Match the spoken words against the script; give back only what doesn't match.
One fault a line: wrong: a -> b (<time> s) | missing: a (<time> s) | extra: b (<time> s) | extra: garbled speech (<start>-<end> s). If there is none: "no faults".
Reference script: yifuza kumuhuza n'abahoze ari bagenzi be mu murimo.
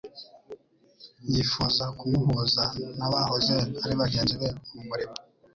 no faults